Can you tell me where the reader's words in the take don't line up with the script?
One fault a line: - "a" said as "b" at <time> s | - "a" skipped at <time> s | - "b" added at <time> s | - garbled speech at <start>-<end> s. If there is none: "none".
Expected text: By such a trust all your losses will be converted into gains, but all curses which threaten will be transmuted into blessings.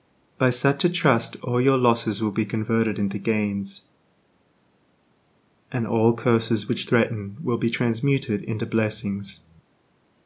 - "but" said as "and" at 5.7 s